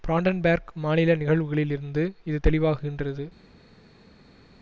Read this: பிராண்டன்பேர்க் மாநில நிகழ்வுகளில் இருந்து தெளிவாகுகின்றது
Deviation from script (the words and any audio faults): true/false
true